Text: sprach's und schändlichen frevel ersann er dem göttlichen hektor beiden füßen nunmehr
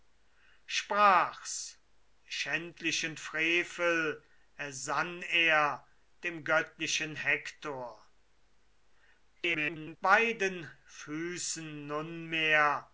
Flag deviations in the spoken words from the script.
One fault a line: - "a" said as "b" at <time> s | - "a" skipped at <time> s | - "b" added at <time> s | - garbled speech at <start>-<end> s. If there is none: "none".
- "und" skipped at 1.8 s
- garbled speech at 9.4-10.0 s